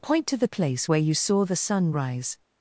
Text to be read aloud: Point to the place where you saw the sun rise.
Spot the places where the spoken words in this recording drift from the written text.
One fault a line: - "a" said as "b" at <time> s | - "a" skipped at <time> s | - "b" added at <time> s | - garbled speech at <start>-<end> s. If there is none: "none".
none